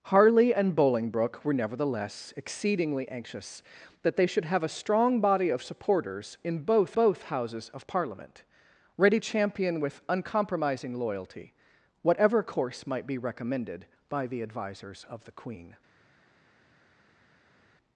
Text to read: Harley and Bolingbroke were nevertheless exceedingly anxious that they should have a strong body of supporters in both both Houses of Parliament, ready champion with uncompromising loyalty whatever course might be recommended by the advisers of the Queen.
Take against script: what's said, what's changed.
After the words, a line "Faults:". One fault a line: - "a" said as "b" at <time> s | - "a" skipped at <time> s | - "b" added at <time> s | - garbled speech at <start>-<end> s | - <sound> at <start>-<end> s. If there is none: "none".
Harley and Bolingbroke were nevertheless exceedingly anxious that they should have a strong body of supporters in both both Houses of Parliament, ready champion with uncompromising loyalty whatever course might be recommended by the advisers of the Queen.
Faults:
none